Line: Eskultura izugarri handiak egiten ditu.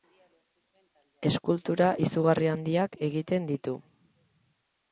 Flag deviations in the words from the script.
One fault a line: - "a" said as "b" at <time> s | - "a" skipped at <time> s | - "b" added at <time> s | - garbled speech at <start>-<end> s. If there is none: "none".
none